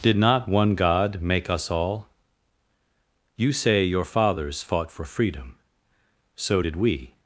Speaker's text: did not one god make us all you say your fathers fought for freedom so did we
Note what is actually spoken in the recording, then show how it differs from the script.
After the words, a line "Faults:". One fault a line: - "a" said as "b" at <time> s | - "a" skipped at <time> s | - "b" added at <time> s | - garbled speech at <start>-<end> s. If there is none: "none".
did not one god make us all you say your fathers fought for freedom so did we
Faults:
none